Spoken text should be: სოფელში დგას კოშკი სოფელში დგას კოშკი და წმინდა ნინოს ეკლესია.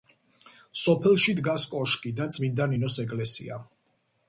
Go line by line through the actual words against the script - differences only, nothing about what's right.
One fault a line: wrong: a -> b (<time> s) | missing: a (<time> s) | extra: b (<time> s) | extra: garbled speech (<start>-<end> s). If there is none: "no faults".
missing: სოფელში დგას კოშკი (2.2 s)